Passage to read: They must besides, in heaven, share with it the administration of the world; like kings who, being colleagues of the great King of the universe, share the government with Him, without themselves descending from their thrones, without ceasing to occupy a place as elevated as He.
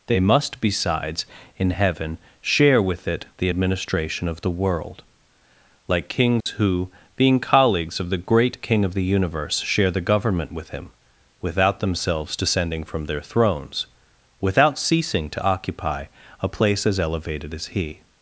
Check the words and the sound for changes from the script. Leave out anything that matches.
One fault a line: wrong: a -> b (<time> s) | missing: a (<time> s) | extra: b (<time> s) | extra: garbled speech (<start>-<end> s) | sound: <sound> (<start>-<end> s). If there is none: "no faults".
sound: dropout (6.4-6.5 s)